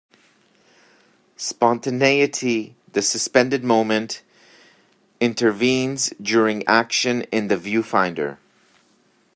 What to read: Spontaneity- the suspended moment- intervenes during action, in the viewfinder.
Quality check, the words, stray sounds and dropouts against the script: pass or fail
pass